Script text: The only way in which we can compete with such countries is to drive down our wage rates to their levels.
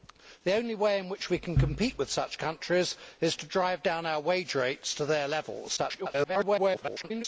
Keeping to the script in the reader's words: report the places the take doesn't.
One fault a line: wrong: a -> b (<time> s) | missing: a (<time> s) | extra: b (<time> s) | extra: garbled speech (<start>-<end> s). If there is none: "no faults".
extra: garbled speech (5.8-7.2 s)